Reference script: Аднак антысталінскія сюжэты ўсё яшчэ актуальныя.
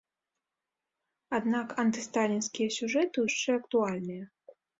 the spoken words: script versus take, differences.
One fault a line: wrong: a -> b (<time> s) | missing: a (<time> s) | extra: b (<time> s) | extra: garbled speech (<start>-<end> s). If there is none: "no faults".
missing: ўсё (3.2 s)